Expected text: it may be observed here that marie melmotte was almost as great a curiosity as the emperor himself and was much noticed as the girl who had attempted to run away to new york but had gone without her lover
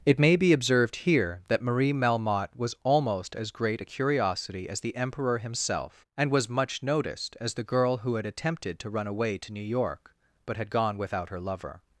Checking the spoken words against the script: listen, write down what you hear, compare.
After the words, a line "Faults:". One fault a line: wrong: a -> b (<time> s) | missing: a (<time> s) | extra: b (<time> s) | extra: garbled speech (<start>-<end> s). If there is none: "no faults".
it may be observed here that marie melmotte was almost as great a curiosity as the emperor himself and was much noticed as the girl who had attempted to run away to new york but had gone without her lover
Faults:
no faults